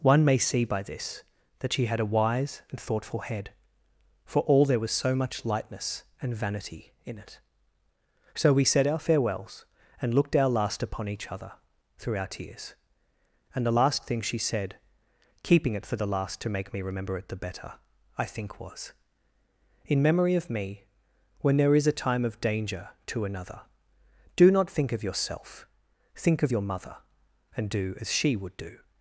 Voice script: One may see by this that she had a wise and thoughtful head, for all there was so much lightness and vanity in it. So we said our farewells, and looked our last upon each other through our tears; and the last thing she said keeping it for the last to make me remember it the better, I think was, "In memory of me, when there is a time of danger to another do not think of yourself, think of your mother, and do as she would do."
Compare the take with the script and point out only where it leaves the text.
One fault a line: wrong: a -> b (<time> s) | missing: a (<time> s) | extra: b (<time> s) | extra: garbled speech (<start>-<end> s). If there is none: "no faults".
no faults